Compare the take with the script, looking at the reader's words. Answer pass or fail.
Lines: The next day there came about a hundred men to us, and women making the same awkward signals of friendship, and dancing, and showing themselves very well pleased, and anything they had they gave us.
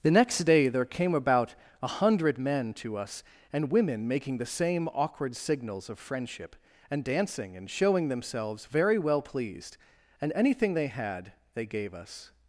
pass